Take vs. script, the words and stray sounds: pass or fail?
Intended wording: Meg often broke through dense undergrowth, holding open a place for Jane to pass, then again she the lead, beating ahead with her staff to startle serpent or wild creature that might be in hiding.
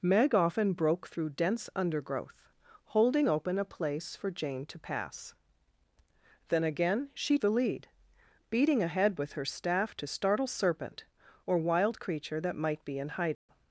fail